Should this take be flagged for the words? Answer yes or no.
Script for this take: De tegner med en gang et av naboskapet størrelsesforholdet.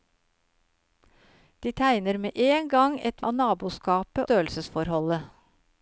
no